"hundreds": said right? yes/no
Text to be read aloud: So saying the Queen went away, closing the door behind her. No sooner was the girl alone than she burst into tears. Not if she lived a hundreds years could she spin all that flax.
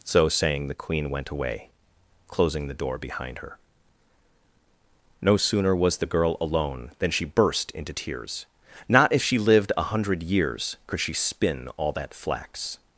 no